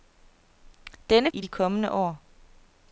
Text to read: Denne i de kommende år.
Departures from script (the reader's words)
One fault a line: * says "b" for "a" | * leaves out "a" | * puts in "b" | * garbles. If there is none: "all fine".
all fine